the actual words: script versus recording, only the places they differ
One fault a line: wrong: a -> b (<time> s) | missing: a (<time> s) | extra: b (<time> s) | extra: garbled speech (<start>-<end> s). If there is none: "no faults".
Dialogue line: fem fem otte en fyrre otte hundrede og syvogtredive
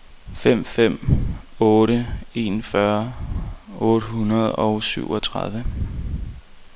no faults